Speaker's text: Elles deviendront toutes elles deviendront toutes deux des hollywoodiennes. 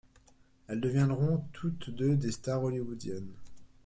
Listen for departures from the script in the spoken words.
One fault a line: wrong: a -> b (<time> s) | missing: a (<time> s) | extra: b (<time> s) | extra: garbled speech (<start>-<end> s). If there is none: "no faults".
missing: elles deviendront toutes (1.9 s)
extra: stars (2.3 s)